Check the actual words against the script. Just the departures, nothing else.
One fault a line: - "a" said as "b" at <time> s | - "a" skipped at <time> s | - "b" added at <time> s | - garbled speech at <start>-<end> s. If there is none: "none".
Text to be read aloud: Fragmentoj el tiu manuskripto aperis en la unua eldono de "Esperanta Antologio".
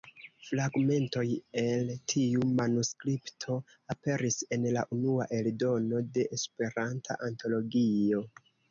none